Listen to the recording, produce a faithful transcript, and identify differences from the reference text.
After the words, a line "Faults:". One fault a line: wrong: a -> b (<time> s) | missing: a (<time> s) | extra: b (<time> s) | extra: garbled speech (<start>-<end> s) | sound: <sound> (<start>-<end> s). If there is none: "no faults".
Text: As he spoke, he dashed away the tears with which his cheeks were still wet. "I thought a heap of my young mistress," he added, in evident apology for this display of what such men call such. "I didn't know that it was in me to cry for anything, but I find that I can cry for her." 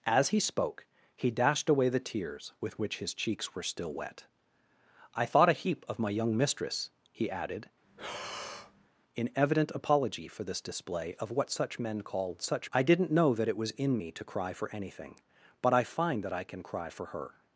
As he spoke, he dashed away the tears with which his cheeks were still wet. "I thought a heap of my young mistress," he added, in evident apology for this display of what such men call such. "I didn't know that it was in me to cry for anything, but I find that I can cry for her."
Faults:
sound: breath (7.8-8.9 s)